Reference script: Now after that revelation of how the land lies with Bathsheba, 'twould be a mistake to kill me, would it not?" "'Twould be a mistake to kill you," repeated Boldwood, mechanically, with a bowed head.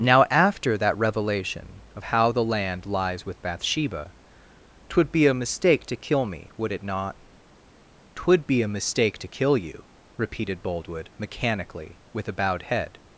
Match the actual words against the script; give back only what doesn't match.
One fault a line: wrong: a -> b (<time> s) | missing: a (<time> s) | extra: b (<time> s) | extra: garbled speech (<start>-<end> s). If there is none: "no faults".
no faults